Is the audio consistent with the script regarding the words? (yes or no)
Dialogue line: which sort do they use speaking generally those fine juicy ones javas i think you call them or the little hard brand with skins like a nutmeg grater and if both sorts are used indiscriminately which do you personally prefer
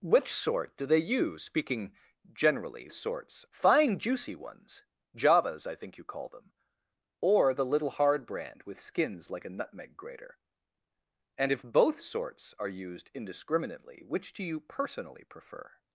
no